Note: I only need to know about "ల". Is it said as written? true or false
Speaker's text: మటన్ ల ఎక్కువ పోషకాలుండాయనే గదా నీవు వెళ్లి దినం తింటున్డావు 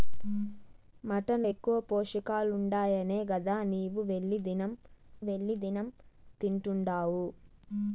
false